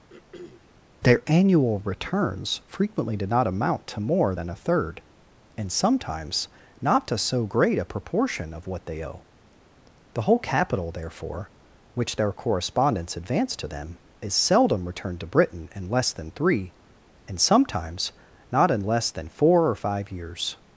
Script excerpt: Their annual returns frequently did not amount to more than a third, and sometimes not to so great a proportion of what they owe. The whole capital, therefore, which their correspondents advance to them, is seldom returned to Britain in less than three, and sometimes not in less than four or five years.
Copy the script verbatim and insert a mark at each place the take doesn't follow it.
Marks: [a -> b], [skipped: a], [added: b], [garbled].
Their annual returns frequently did not amount to more than a third, and sometimes not to so great a proportion of what they owe. The whole capital, therefore, which their correspondents advance to them, is seldom returned to Britain in less than three, and sometimes not in less than four or five years.